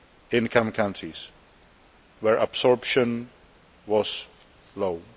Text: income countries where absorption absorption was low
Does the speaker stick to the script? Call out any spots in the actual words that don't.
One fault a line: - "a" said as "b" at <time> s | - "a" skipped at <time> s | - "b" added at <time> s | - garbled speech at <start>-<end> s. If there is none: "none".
- "absorption" skipped at 3.3 s